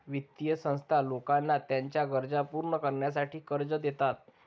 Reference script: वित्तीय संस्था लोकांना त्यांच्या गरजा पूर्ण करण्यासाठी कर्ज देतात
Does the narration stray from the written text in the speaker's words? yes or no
no